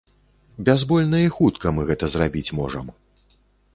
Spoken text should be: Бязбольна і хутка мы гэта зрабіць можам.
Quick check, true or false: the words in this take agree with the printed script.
true